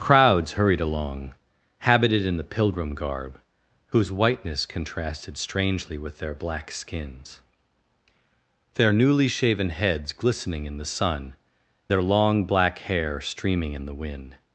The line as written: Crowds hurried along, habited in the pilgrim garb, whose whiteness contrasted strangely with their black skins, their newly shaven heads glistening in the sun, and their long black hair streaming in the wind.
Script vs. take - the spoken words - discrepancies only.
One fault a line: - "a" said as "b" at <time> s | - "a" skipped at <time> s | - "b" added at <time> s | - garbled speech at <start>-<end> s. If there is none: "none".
- "and" skipped at 11.3 s